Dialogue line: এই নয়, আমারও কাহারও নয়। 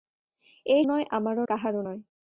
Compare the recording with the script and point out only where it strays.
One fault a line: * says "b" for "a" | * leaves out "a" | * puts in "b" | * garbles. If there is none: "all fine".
all fine